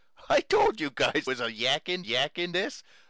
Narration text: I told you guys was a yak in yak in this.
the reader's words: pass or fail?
pass